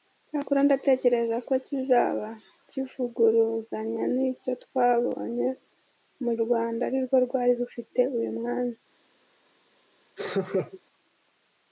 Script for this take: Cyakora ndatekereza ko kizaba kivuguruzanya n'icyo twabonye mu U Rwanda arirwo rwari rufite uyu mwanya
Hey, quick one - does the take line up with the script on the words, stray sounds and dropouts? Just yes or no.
no